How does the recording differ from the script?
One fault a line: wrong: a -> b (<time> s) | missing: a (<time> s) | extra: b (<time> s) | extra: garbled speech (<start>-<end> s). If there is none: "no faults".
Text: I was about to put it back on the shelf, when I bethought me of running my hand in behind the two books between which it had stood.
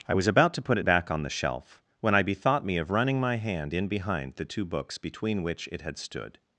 no faults